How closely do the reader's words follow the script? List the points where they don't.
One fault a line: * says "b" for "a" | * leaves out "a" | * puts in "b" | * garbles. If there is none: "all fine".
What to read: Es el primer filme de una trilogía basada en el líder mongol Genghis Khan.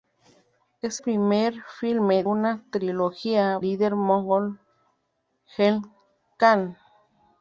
* leaves out "el"
* leaves out "de"
* leaves out "basada en"